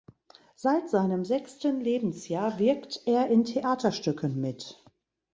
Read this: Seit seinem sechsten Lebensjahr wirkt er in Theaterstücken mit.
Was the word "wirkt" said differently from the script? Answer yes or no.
no